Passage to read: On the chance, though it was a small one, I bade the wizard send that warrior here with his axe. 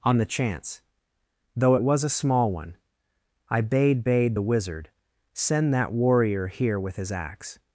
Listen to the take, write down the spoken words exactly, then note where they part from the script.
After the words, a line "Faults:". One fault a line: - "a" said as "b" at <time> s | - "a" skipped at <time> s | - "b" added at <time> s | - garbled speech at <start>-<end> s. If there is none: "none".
On the chance, though it was a small one, I bade bade the wizard send that warrior here with his axe.
Faults:
- "bade" added at 4.0 s